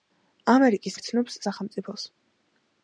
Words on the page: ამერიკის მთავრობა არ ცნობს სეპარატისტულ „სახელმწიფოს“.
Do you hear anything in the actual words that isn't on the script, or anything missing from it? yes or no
yes